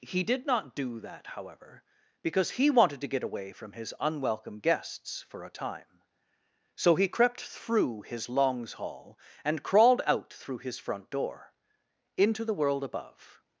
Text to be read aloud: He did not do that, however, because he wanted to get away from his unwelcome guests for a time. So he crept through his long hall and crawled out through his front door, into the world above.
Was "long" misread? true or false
true